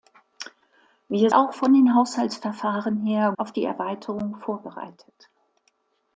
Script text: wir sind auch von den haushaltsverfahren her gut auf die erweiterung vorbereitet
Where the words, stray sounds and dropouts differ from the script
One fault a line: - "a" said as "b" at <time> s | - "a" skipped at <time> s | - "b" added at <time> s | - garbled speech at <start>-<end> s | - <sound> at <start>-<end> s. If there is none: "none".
- "sind" skipped at 1.3 s
- "gut" skipped at 3.3 s